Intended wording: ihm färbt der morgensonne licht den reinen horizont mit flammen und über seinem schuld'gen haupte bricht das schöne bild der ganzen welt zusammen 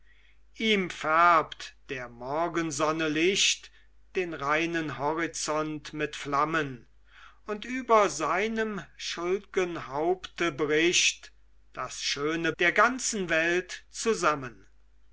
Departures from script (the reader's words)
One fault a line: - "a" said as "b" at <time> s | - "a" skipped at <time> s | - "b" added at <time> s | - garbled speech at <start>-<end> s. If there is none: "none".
- "bild" skipped at 12.5 s